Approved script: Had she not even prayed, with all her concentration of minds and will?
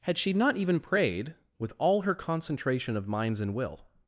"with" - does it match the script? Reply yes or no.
yes